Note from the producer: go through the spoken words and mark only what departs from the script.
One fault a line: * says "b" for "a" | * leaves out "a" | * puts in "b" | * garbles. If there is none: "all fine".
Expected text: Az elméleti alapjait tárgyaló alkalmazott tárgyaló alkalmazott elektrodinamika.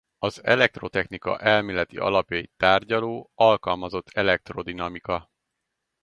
* puts in "elektrotechnika"
* leaves out "tárgyaló alkalmazott"